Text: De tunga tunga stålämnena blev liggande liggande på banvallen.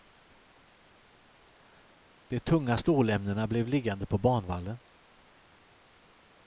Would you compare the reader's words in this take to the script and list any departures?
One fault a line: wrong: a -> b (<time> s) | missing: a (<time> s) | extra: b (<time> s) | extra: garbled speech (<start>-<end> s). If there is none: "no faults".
missing: tunga (2.8 s)
missing: liggande (4.1 s)